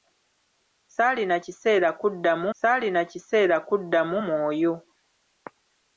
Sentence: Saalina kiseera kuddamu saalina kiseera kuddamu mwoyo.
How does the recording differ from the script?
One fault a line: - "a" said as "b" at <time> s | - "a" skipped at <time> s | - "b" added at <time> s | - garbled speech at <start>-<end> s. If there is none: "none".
none